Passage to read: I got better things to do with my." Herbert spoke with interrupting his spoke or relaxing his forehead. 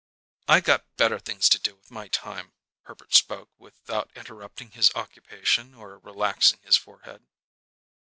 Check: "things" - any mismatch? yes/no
no